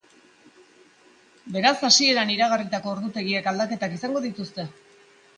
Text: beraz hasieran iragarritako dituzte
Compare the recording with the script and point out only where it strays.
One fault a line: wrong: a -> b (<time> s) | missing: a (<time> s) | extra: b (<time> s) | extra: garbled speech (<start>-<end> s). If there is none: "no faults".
extra: ordutegiek aldaketak izango (2.9 s)